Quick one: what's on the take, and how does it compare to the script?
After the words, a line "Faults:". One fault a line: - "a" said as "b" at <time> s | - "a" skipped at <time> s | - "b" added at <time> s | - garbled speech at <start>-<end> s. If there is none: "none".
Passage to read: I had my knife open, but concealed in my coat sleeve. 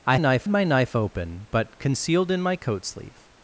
I knife my knife open, but concealed in my coat sleeve.
Faults:
- "had" said as "knife" at 0.2 s